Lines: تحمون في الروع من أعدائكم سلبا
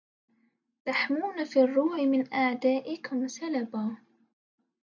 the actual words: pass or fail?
pass